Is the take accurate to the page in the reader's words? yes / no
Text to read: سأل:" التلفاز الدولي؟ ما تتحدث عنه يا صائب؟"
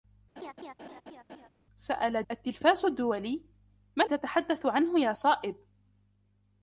yes